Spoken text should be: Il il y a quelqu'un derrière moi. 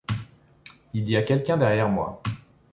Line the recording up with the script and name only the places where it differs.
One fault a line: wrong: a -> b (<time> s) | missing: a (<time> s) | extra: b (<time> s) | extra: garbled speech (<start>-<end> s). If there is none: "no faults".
missing: il (1.1 s)